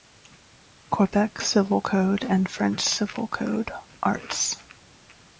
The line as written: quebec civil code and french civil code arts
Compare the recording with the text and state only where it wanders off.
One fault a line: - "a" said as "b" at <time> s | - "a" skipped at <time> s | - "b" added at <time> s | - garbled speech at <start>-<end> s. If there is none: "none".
none